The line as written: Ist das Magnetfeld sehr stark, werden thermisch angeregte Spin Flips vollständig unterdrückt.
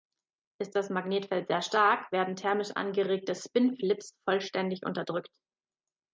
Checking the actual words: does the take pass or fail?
pass